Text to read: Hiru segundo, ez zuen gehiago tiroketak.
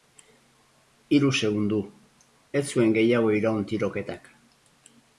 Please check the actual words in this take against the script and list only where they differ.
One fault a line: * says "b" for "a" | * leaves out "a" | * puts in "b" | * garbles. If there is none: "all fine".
* puts in "iraun"